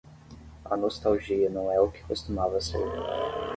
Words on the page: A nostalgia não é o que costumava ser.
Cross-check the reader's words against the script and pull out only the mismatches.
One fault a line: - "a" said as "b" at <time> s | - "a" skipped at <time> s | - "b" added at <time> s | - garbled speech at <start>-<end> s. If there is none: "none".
none